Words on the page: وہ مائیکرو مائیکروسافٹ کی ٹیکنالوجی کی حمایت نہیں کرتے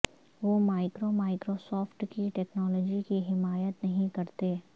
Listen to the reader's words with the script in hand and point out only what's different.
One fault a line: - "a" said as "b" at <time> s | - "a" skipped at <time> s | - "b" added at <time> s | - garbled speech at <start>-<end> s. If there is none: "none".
none